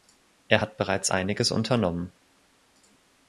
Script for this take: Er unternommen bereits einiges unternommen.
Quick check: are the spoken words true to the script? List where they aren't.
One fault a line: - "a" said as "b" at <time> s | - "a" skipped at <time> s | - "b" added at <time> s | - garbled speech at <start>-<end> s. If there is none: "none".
- "unternommen" said as "hat" at 0.6 s